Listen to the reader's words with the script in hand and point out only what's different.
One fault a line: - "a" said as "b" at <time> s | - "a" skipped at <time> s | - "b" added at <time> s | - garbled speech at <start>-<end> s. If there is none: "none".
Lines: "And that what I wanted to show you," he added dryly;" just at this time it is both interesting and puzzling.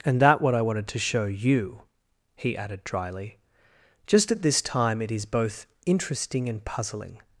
none